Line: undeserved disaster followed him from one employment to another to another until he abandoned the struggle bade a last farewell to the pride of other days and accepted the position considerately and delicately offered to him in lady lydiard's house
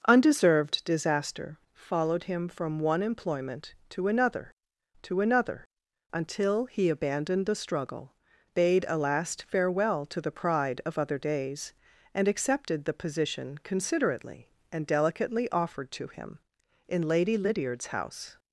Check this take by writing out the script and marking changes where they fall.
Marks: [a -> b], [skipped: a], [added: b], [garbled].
undeserved disaster followed him from one employment to another to another until he abandoned the struggle bade a last farewell to the pride of other days and accepted the position considerately and delicately offered to him in lady lydiard's house